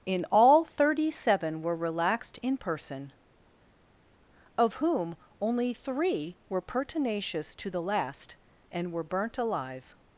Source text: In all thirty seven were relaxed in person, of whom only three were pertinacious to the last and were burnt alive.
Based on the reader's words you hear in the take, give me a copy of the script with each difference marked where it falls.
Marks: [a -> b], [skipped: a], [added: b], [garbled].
In all thirty seven were relaxed in person, of whom only three were pertinacious to the last and were burnt alive.